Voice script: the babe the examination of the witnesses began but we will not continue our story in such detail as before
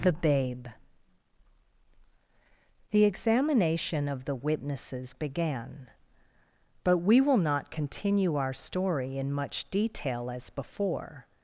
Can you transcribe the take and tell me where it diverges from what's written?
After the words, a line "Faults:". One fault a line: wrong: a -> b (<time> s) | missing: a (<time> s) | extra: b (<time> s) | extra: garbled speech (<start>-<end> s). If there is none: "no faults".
the babe the examination of the witnesses began but we will not continue our story in much detail as before
Faults:
wrong: such -> much (9.3 s)